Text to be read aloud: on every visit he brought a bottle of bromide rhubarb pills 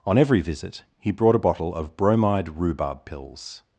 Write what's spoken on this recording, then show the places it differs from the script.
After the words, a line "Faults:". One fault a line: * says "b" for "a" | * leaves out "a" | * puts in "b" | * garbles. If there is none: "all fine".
on every visit he brought a bottle of bromide rhubarb pills
Faults:
all fine